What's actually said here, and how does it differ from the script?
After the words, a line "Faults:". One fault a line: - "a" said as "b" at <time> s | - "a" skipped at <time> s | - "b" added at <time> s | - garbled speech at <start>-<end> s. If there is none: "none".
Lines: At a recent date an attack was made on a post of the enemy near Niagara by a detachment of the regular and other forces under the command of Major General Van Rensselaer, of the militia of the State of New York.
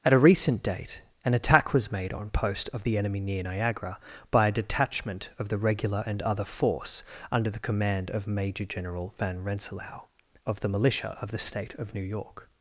At a recent date an attack was made on post of the enemy near Niagara by a detachment of the regular and other force under the command of Major General Van Rensselaer, of the militia of the State of New York.
Faults:
- "a" skipped at 2.3 s
- "forces" said as "force" at 6.4 s